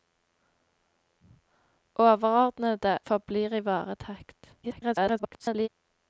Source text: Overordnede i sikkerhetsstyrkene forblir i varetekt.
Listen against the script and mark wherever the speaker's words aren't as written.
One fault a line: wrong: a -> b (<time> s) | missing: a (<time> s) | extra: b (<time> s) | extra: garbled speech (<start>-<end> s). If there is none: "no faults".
missing: i sikkerhetsstyrkene (3.0 s)
extra: garbled speech (4.6-5.7 s)